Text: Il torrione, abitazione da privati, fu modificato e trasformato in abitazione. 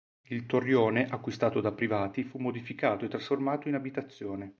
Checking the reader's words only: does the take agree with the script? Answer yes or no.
no